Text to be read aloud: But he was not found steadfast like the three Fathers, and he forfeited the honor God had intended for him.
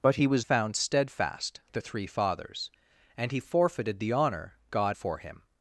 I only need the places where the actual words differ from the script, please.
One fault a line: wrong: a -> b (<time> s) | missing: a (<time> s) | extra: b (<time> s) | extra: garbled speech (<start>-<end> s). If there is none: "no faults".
missing: not (0.5 s)
missing: like (1.6 s)
missing: had intended (5.0 s)